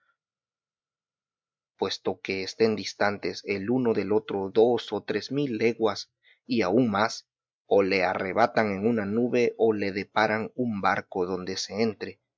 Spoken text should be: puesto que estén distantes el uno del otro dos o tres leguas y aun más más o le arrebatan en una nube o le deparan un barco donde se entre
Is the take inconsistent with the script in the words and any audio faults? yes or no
yes